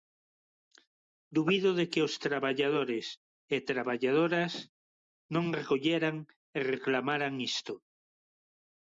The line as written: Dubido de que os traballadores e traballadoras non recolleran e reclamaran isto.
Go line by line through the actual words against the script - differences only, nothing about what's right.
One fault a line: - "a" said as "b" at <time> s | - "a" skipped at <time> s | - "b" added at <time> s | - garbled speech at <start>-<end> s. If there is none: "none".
none